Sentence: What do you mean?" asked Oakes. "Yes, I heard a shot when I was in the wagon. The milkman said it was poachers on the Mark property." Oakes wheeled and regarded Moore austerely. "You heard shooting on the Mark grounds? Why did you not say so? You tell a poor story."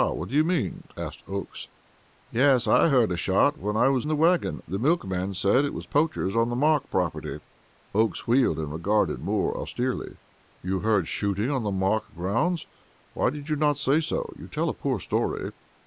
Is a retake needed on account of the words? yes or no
yes